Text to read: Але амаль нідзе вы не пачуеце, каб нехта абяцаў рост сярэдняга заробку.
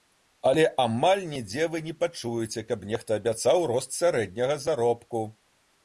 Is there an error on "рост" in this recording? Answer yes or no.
no